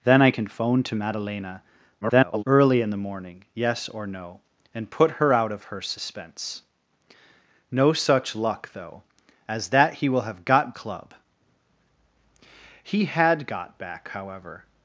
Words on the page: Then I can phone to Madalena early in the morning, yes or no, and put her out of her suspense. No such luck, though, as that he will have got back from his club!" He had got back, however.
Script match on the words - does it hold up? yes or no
no